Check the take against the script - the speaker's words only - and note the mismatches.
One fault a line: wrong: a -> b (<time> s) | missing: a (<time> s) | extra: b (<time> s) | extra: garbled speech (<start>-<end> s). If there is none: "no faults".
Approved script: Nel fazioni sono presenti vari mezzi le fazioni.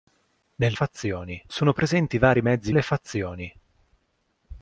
no faults